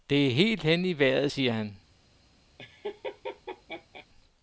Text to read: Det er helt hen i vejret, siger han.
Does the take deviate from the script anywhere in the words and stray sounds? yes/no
yes